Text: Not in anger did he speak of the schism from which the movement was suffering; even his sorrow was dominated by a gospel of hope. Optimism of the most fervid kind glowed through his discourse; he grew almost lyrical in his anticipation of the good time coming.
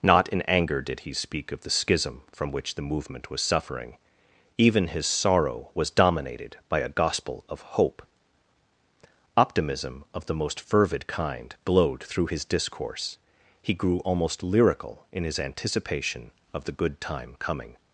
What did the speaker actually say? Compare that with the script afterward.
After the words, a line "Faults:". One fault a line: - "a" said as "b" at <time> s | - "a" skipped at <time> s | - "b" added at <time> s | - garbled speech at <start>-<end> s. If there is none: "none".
Not in anger did he speak of the schism from which the movement was suffering; even his sorrow was dominated by a gospel of hope. Optimism of the most fervid kind glowed through his discourse; he grew almost lyrical in his anticipation of the good time coming.
Faults:
none